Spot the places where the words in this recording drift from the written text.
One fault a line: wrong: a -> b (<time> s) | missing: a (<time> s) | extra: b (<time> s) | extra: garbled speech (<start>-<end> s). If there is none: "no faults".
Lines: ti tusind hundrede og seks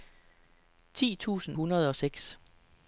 no faults